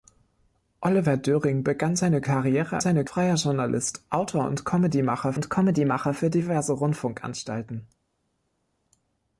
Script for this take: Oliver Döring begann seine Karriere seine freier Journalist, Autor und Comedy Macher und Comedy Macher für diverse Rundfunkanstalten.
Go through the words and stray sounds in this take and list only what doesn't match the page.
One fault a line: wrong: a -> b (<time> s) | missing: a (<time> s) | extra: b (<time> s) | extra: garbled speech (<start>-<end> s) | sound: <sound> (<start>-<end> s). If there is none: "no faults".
no faults